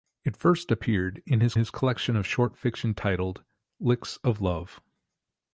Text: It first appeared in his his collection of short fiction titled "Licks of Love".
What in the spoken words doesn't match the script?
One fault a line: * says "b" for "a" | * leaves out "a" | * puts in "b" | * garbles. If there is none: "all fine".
all fine